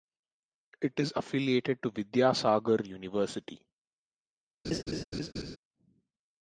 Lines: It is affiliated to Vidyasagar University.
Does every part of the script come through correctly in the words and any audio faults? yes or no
no